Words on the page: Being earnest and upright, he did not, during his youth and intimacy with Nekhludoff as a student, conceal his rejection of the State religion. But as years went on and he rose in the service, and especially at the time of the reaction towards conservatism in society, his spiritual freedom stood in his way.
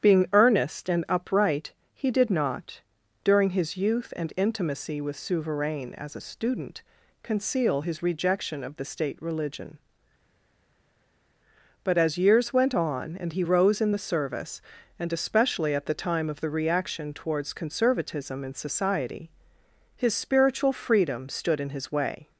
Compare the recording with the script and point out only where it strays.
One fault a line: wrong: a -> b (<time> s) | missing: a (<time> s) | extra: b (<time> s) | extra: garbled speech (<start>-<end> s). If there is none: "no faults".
wrong: Nekhludoff -> Souverain (5.2 s)